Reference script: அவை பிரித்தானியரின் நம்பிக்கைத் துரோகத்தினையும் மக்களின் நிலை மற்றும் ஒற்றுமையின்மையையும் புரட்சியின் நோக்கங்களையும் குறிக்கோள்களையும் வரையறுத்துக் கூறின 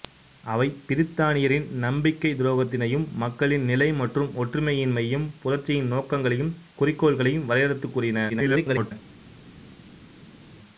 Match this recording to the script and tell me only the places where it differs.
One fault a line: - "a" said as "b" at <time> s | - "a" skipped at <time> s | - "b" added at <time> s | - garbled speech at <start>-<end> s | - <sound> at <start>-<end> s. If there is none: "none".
- garbled speech at 8.3-8.9 s